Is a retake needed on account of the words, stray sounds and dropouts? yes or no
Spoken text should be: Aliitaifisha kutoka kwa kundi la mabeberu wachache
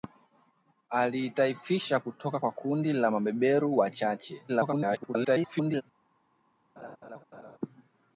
yes